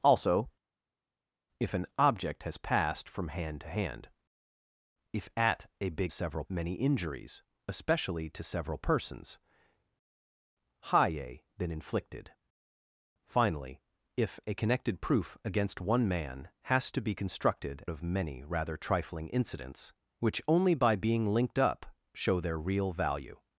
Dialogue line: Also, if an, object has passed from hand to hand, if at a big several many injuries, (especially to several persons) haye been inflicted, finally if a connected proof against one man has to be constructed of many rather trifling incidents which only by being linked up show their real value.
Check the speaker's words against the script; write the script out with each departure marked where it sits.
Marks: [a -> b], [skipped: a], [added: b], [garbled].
Also, if an, object has passed from hand to hand, if at a big several many injuries, (especially to several persons) haye been inflicted, finally if a connected proof against one man has to be constructed of many rather trifling incidents which only by being linked up show their real value.